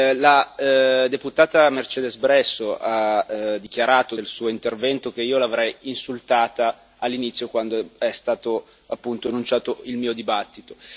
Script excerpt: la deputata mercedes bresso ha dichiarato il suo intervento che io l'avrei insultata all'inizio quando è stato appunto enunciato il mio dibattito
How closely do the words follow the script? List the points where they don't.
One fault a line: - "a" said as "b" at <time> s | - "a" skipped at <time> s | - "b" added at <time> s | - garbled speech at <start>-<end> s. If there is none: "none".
none